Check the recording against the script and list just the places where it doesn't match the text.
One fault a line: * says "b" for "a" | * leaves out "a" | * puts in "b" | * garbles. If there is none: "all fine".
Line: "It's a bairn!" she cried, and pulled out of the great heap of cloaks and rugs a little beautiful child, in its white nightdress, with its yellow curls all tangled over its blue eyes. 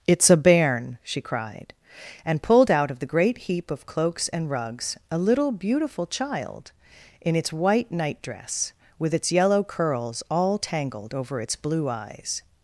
all fine